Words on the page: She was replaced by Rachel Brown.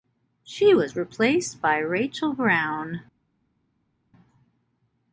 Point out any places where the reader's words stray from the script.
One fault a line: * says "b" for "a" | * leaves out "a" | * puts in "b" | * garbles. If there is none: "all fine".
all fine